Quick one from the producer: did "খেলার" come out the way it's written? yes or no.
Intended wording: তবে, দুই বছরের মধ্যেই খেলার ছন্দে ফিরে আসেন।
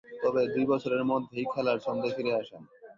yes